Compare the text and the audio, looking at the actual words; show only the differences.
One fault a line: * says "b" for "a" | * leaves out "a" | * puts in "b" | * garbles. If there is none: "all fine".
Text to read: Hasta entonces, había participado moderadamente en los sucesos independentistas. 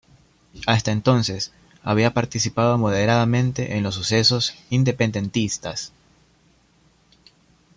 all fine